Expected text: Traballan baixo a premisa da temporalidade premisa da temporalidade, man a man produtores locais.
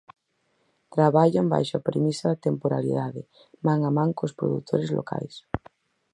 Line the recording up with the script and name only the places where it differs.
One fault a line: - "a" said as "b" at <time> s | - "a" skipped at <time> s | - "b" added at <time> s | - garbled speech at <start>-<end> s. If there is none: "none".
- "premisa da temporalidade" skipped at 3.2 s
- "cos" added at 4.2 s